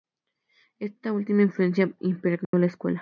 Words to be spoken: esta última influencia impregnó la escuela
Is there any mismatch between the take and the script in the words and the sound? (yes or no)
yes